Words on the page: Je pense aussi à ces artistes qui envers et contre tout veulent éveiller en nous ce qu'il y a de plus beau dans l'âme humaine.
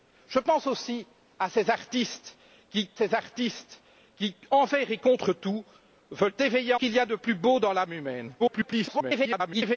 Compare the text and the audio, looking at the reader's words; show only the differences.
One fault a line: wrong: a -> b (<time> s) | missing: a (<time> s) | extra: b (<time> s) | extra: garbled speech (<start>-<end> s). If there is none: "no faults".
extra: ces artistes qui (2.9 s)
missing: en nous ce (6.7 s)
extra: garbled speech (8.4-9.8 s)